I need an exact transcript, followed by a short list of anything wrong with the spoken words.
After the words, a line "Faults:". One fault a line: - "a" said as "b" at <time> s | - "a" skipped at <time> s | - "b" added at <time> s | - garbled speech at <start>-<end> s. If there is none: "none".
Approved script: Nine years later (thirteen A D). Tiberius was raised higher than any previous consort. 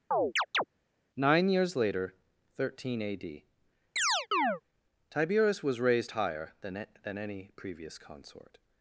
Nine years later (thirteen A D). Tiberius was raised higher than than any previous consort.
Faults:
- "than" added at 7.0 s